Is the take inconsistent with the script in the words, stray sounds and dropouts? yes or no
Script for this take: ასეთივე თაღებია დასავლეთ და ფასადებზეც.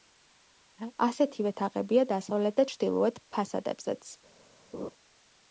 yes